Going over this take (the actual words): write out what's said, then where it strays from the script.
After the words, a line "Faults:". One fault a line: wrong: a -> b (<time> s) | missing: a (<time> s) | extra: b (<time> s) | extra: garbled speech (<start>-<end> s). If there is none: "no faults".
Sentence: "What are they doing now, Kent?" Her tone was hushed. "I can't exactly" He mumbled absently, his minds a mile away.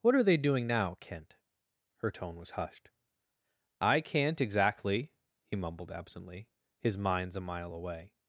"What are they doing now, Kent?" Her tone was hushed. "I can't exactly" He mumbled absently, his minds a mile away.
Faults:
no faults